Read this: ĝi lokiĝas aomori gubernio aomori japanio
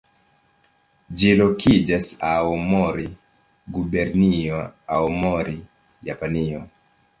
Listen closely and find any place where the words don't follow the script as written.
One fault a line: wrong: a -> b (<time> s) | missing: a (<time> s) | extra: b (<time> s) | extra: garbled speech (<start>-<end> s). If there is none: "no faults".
no faults